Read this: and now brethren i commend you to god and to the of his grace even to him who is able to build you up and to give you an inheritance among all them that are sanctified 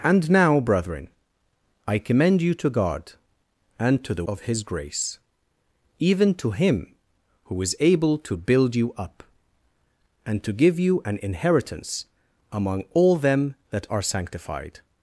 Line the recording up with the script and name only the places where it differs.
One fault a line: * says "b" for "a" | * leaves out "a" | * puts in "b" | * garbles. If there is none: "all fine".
all fine